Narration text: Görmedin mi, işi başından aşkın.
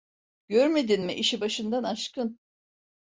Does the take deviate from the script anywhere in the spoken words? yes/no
no